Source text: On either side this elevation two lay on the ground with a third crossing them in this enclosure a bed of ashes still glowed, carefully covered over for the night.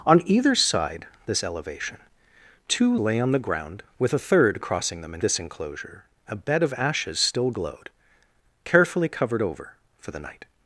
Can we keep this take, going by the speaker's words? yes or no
yes